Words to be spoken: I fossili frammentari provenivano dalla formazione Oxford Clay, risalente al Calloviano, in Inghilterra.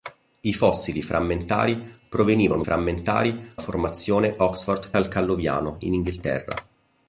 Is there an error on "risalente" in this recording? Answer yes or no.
yes